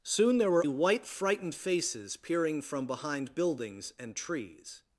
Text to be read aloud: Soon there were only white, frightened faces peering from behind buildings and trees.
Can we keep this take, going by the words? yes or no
no